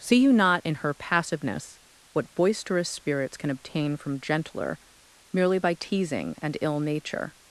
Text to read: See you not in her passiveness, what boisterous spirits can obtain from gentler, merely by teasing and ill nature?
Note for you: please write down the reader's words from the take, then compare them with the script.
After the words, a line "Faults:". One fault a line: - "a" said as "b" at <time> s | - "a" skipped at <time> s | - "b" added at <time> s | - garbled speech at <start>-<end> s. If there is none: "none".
See you not in her passiveness, what boisterous spirits can obtain from gentler, merely by teasing and ill nature?
Faults:
none